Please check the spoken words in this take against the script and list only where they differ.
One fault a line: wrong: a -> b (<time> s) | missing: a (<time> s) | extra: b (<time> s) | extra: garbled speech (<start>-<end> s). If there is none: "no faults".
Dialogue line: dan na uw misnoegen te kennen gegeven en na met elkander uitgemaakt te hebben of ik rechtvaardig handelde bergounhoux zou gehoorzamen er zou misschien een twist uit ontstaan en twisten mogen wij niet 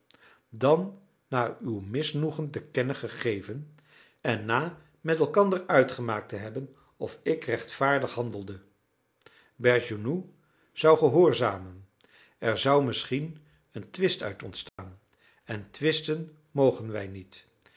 no faults